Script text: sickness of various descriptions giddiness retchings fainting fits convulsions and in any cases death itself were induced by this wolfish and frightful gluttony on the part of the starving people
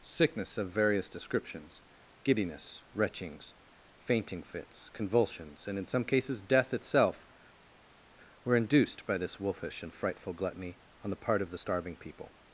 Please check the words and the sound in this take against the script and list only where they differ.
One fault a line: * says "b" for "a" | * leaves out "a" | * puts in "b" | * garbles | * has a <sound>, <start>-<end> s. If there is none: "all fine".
* says "some" for "any"